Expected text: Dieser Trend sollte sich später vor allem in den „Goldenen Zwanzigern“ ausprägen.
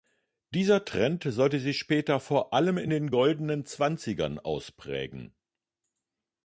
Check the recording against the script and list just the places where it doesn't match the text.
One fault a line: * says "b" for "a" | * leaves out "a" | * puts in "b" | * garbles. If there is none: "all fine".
all fine